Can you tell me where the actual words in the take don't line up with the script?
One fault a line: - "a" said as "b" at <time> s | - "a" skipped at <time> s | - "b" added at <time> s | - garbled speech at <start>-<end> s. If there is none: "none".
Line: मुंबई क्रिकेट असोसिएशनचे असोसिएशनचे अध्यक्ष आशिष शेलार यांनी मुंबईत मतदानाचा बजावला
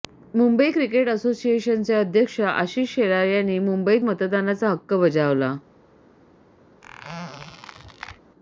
- "असोसिएशनचे" skipped at 1.9 s
- "हक्क" added at 4.7 s